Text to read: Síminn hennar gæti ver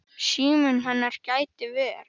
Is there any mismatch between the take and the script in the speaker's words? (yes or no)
no